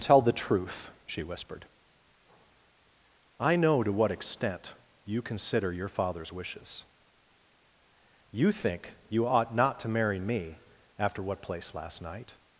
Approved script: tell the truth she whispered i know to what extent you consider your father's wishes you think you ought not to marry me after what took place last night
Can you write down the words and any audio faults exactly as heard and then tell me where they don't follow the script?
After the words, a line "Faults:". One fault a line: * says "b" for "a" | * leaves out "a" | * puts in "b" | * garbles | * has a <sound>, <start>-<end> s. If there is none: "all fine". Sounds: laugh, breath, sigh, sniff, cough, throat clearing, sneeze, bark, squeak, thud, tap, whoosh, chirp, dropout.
tell the truth she whispered i know to what extent you consider your father's wishes you think you ought not to marry me after what place last night
Faults:
* leaves out "took"